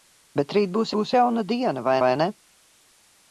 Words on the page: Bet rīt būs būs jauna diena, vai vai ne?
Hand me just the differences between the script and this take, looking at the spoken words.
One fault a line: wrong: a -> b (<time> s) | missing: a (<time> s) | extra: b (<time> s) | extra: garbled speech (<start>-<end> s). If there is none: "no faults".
no faults